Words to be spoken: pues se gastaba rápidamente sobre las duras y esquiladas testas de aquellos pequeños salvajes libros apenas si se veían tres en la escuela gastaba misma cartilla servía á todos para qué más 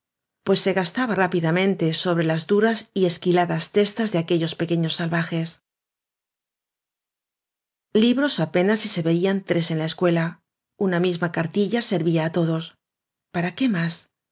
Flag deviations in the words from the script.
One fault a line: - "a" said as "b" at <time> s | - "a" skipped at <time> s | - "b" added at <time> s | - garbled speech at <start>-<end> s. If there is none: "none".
- "gastaba" said as "una" at 10.9 s